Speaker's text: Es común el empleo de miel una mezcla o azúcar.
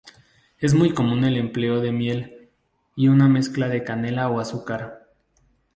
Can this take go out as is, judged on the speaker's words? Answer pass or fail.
fail